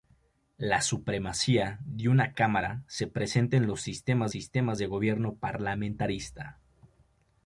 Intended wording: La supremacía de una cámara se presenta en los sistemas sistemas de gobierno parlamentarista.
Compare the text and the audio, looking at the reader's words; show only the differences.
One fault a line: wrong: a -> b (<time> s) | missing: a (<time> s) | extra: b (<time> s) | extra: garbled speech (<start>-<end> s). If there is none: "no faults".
no faults